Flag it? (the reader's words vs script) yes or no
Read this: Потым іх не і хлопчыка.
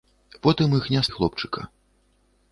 no